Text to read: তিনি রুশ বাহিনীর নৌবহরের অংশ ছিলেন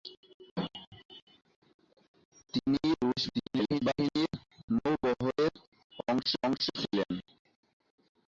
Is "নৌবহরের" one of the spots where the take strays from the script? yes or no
no